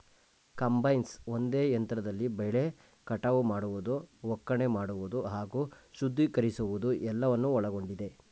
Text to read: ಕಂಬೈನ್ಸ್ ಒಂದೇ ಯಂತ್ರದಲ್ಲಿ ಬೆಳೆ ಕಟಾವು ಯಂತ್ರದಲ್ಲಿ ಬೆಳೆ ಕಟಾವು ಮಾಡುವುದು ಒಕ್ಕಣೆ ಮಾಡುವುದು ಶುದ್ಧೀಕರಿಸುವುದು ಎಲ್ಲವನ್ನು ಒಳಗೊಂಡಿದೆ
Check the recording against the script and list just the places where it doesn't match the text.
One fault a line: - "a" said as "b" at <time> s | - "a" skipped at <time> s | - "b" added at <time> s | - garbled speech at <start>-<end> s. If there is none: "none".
- "ಯಂತ್ರದಲ್ಲಿ ಬೆಳೆ ಕಟಾವು" skipped at 3.4 s
- "ಹಾಗೂ" added at 5.3 s